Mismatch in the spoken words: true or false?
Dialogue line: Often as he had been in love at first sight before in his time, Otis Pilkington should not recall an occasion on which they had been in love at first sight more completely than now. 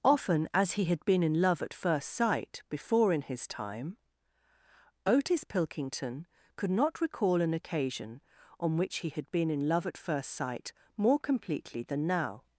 true